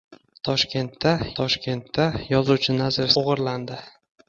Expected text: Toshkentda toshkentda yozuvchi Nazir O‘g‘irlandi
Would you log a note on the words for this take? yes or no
no